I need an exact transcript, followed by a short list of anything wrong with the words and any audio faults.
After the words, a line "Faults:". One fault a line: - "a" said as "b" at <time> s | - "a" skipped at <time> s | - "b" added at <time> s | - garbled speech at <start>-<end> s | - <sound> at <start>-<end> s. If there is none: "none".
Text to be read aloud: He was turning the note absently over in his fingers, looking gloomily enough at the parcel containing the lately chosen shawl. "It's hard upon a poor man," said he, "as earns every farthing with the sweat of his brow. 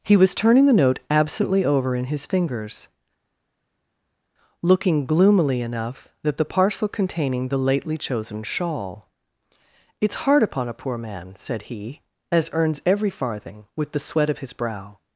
He was turning the note absently over in his fingers, looking gloomily enough that the parcel containing the lately chosen shawl. "It's hard upon a poor man," said he, "as earns every farthing with the sweat of his brow.
Faults:
- "at" said as "that" at 6.2 s